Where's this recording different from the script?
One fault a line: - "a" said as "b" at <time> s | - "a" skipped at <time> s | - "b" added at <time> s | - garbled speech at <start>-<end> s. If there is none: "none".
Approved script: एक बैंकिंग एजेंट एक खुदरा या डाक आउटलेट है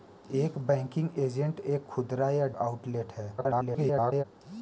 - "डाक" skipped at 2.5 s
- garbled speech at 3.4-4.2 s